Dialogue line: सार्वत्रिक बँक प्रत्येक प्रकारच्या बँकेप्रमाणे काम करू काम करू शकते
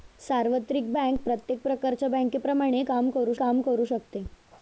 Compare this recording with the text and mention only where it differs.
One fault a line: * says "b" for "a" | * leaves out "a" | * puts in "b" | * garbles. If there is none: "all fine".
all fine